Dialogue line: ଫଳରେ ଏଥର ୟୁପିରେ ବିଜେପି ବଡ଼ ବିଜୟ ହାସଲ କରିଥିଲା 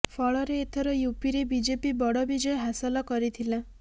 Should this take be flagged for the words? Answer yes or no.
no